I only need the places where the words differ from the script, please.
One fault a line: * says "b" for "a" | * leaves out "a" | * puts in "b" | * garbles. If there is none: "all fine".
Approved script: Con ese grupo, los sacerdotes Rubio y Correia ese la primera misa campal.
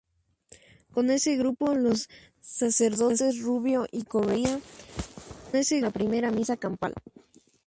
all fine